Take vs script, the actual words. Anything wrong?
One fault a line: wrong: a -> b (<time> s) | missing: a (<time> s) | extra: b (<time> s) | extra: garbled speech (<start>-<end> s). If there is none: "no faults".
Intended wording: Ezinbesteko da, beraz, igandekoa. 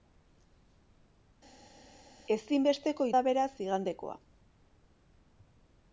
no faults